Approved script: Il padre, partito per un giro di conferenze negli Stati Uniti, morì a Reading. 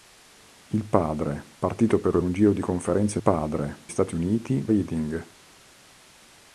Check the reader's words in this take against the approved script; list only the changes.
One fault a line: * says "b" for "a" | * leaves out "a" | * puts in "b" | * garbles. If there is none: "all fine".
* puts in "per"
* says "padre" for "negli"
* leaves out "morì a"